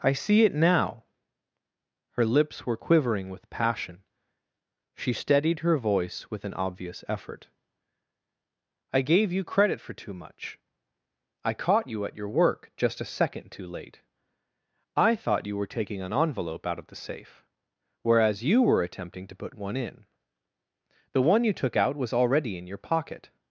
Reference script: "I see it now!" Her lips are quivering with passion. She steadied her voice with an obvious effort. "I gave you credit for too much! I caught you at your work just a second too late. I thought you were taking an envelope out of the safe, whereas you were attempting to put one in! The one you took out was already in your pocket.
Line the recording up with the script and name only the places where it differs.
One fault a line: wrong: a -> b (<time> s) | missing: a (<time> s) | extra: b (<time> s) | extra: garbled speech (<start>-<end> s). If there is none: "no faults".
wrong: are -> were (2.6 s)